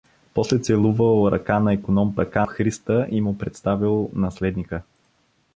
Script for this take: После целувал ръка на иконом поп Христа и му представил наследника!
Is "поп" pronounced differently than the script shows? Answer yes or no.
yes